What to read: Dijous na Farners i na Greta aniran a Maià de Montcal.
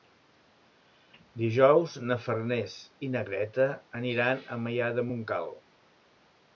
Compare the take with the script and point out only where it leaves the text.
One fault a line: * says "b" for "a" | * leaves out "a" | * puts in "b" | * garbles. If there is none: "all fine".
all fine